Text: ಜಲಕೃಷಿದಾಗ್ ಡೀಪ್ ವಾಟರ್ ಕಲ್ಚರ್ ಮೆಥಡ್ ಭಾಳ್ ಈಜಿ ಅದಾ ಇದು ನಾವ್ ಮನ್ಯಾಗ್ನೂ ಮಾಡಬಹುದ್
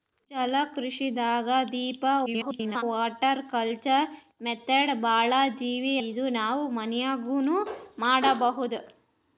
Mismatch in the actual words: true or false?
true